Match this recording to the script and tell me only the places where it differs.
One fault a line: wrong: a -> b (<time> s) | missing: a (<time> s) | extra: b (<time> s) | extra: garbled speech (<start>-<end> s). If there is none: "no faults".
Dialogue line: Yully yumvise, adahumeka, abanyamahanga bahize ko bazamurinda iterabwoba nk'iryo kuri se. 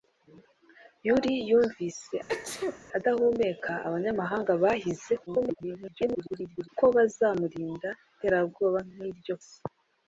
extra: garbled speech (5.3-6.7 s)
missing: kuri (9.3 s)